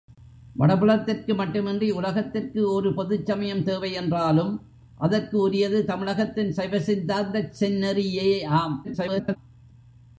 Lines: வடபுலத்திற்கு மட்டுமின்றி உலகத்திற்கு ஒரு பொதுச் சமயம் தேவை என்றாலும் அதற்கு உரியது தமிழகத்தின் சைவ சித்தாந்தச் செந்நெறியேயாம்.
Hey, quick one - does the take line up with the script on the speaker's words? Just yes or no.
no